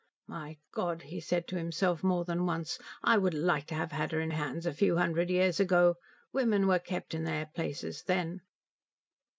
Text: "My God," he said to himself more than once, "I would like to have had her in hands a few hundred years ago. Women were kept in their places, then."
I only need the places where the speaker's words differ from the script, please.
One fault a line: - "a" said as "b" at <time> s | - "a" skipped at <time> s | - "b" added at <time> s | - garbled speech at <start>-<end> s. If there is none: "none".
none